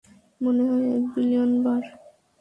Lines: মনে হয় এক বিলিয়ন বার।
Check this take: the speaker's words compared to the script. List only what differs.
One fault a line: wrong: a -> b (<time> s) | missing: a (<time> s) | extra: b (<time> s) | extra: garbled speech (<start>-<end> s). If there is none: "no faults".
no faults